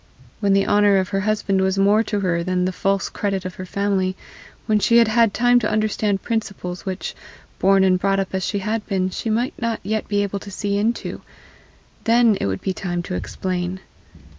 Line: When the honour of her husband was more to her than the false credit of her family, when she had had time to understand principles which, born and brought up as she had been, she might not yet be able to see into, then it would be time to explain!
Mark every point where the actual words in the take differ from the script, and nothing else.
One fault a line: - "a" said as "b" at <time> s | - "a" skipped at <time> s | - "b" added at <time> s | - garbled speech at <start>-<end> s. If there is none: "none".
none